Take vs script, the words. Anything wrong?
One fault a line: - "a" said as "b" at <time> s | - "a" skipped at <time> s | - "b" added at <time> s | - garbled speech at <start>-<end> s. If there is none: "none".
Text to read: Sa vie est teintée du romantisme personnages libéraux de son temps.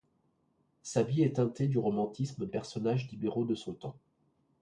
none